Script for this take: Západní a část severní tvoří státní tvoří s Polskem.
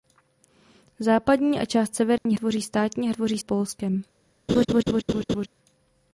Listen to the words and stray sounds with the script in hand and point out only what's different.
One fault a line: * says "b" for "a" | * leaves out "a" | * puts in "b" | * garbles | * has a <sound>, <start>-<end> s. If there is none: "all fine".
* has a dropout, 2.2-2.3 s
* has a laugh, 4.5-5.5 s